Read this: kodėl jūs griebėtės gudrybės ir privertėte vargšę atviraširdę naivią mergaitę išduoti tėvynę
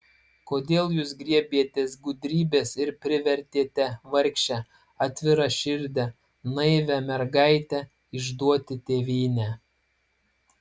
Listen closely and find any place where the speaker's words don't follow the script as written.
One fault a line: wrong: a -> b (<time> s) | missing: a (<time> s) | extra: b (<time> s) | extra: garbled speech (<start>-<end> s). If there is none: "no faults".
no faults